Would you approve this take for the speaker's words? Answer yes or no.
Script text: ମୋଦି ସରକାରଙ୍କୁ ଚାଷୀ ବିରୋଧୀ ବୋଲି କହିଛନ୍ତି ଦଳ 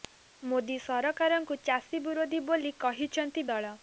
yes